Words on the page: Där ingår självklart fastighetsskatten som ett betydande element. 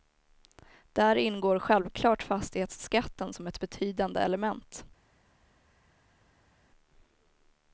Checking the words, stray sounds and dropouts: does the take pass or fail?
pass